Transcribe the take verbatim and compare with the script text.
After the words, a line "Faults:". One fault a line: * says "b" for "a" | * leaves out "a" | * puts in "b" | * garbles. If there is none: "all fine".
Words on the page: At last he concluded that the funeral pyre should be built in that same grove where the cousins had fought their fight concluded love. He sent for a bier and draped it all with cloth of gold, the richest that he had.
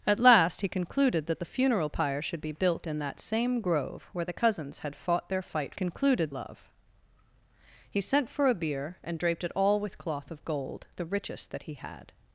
At last he concluded that the funeral pyre should be built in that same grove where the cousins had fought their fight concluded love. He sent for a bier and draped it all with cloth of gold, the richest that he had.
Faults:
all fine